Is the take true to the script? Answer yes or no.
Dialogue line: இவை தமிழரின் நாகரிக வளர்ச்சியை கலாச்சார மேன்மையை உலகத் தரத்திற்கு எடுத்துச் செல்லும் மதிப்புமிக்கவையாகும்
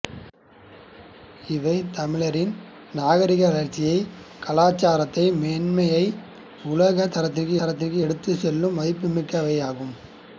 no